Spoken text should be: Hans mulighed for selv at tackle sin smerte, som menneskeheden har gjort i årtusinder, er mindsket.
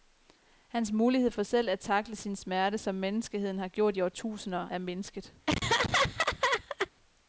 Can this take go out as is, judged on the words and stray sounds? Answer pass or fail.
fail